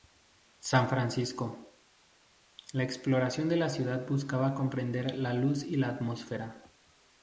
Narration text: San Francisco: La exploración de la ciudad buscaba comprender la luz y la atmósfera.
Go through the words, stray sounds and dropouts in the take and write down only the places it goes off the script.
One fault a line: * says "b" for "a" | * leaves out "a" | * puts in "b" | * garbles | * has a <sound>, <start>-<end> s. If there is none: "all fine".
all fine